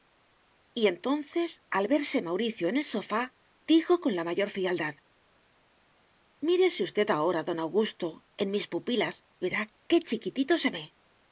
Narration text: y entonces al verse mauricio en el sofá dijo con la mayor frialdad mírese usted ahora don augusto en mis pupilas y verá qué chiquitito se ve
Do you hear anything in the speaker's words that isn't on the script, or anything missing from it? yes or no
yes